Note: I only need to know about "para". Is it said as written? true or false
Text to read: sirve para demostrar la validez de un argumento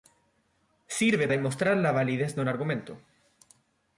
false